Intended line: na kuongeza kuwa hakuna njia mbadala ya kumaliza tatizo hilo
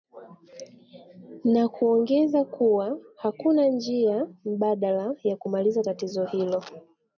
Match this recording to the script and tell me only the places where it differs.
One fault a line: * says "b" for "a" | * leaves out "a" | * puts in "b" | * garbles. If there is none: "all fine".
all fine